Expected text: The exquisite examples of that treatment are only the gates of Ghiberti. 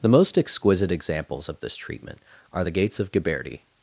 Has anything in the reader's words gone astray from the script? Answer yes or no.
yes